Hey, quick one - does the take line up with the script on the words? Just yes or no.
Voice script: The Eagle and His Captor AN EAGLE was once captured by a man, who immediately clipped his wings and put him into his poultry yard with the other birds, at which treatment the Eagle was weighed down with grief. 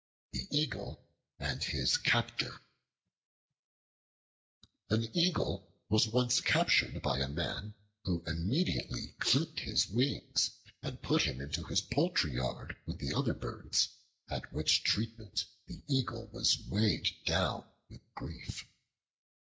yes